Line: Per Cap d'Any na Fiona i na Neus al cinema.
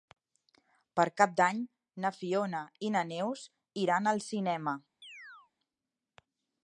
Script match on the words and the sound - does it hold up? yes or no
no